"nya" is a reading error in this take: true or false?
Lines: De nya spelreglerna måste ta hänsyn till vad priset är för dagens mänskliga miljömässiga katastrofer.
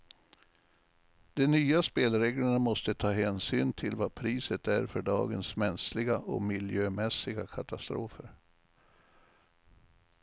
false